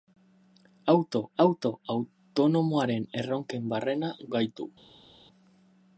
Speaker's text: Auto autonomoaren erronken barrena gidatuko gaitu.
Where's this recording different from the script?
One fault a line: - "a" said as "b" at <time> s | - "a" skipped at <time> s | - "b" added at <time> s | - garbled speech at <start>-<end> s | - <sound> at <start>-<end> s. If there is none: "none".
- "auto" added at 1.4 s
- "gidatuko" skipped at 4.1 s